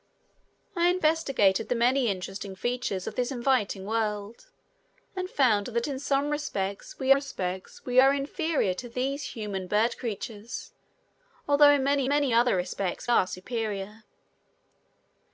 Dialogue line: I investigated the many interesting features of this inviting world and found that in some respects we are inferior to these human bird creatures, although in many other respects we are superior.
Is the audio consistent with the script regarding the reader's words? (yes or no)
no